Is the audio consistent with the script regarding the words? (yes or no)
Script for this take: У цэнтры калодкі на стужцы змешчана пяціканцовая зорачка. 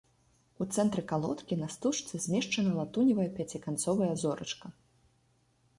no